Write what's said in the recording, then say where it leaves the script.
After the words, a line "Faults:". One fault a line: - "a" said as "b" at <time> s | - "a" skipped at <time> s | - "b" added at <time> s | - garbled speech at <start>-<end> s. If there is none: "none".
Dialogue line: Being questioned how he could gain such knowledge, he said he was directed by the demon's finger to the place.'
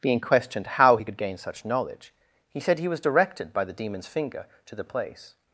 Being questioned how he could gain such knowledge, he said he was directed by the demon's finger to the place.'
Faults:
none